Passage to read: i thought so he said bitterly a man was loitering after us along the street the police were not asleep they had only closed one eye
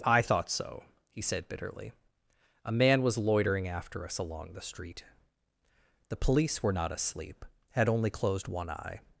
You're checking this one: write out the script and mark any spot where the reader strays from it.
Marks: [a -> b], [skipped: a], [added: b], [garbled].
i thought so he said bitterly a man was loitering after us along the street the police were not asleep [skipped: they] had only closed one eye